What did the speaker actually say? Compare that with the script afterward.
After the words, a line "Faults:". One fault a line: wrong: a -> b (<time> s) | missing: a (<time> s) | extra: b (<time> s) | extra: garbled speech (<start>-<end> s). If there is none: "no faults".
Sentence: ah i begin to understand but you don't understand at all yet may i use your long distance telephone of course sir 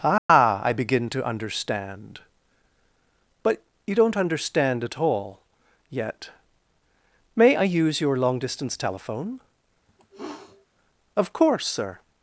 ah i begin to understand but you don't understand at all yet may i use your long distance telephone of course sir
Faults:
no faults